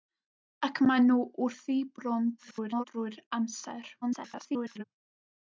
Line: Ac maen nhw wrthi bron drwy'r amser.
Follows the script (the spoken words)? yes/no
no